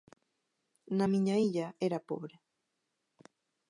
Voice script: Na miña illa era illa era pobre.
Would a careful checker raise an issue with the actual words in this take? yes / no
yes